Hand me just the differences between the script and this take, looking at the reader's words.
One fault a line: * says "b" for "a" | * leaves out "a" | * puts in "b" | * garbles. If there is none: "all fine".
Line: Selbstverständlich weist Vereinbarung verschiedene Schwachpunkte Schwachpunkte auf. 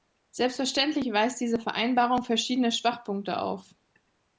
* puts in "diese"
* leaves out "Schwachpunkte"